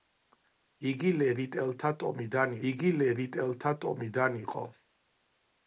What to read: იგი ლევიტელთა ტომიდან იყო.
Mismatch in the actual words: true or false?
true